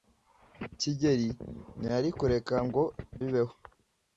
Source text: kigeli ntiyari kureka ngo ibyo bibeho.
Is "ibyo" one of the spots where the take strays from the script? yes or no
yes